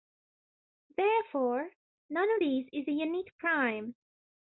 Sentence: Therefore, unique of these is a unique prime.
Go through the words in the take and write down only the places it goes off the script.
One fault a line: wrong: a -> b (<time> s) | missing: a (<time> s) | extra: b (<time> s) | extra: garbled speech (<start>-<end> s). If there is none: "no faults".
wrong: unique -> none (2.1 s)